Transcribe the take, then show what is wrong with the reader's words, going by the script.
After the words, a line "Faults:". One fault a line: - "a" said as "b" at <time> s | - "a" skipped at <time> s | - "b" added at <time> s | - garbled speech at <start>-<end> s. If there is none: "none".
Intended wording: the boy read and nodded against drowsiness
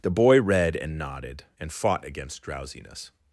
the boy read and nodded and fought against drowsiness
Faults:
- "and fought" added at 1.6 s